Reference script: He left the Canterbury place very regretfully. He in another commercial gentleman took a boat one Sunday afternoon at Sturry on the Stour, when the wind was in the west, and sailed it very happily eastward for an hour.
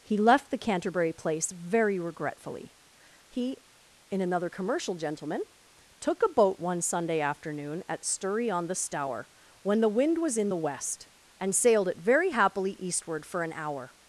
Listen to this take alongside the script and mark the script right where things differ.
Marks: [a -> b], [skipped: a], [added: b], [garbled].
He left the Canterbury place very regretfully. He in another commercial gentleman took a boat one Sunday afternoon at Sturry on the Stour, when the wind was in the west, and sailed it very happily eastward for an hour.